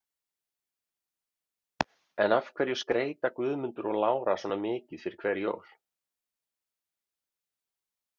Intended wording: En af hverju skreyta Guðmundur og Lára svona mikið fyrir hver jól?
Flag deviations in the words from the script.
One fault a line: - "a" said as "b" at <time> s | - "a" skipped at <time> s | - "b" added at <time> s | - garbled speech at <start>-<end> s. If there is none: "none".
none